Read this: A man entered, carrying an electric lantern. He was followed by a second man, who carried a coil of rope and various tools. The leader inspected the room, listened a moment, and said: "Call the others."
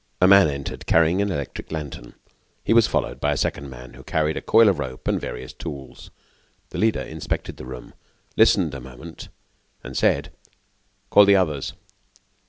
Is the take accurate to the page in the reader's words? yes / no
yes